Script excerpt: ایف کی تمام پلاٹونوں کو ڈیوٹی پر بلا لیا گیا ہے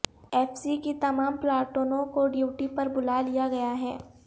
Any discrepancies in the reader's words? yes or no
yes